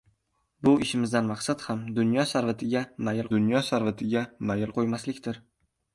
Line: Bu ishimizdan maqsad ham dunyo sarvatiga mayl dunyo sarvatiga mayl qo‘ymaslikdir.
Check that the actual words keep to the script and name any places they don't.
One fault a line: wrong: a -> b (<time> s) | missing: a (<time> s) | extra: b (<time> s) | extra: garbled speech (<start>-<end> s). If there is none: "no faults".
no faults